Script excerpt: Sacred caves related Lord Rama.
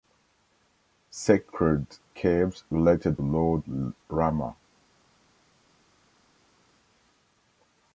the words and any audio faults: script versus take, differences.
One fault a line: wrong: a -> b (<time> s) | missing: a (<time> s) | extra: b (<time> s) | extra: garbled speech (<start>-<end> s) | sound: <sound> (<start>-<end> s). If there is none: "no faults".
no faults